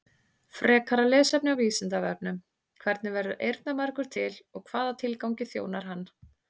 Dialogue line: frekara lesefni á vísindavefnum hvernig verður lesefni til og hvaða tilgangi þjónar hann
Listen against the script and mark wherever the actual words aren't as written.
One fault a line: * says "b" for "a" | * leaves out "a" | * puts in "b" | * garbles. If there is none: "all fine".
* says "eyrnamergur" for "lesefni"